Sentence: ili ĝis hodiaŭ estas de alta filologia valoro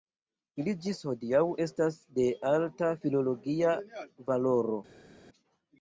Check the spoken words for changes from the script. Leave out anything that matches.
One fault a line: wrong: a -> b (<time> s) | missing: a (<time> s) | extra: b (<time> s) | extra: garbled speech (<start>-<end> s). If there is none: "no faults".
no faults